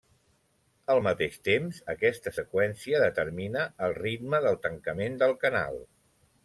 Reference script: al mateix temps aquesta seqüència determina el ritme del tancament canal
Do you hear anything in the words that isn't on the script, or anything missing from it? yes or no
yes